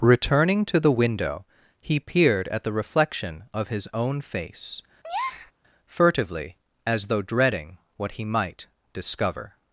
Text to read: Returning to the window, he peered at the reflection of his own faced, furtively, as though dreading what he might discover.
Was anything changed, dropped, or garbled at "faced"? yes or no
yes